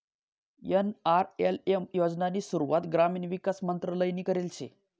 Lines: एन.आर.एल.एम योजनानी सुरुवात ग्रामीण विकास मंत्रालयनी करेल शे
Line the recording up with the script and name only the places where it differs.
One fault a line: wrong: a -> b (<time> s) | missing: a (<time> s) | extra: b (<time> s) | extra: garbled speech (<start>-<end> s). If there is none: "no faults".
no faults